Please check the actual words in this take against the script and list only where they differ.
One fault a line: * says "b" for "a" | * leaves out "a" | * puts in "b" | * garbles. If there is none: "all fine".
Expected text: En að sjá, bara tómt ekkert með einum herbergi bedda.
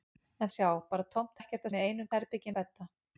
all fine